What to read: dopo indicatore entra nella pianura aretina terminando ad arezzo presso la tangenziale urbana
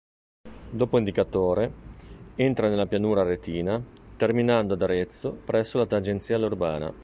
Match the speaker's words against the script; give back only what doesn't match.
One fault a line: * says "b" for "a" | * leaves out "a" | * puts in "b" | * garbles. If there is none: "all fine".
all fine